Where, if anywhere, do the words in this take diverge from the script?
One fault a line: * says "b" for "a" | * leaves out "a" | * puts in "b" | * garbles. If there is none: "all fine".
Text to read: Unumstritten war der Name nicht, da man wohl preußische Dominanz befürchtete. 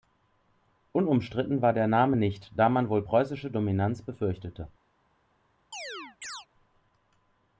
all fine